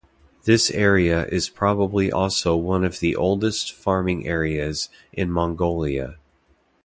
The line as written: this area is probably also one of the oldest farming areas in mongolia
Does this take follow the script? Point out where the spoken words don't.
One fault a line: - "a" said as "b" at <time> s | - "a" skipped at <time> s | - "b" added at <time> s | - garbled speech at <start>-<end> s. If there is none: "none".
none